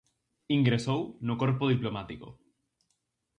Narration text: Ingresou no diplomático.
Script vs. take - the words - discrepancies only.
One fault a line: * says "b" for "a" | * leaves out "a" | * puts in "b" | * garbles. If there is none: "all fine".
* puts in "corpo"